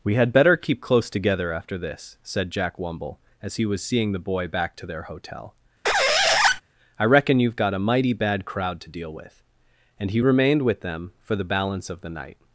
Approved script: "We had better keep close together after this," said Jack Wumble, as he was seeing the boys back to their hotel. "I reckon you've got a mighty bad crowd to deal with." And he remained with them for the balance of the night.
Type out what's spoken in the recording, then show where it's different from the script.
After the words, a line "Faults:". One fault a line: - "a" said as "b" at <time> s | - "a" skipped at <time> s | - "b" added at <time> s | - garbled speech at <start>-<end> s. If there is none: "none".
"We had better keep close together after this," said Jack Wumble, as he was seeing the boy back to their hotel. "I reckon you've got a mighty bad crowd to deal with." And he remained with them for the balance of the night.
Faults:
- "boys" said as "boy" at 4.2 s